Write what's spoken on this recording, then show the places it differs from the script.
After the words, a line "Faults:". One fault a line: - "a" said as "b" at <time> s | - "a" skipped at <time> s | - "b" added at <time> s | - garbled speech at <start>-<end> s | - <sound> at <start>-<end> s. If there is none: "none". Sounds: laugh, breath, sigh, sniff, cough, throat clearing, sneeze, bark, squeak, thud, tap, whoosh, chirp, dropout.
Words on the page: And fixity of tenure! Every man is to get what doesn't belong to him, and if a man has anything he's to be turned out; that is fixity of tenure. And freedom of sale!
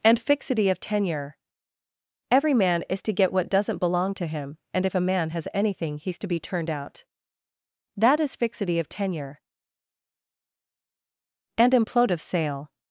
And fixity of tenure! Every man is to get what doesn't belong to him, and if a man has anything he's to be turned out; that is fixity of tenure. And implode of sale!
Faults:
- "freedom" said as "implode" at 11.7 s